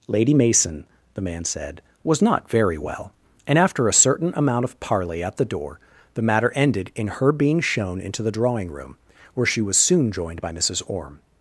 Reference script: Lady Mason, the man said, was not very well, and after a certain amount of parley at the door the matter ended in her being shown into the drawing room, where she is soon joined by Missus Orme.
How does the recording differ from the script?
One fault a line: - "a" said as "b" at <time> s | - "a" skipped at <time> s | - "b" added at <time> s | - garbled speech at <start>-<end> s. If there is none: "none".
- "is" said as "was" at 9.6 s